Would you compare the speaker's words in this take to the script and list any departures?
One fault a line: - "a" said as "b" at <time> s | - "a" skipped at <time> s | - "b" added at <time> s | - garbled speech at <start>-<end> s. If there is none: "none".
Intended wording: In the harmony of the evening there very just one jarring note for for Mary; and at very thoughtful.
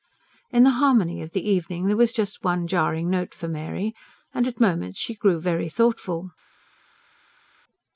- "very" said as "was" at 1.9 s
- "for" skipped at 3.5 s
- "moments she grew" added at 4.6 s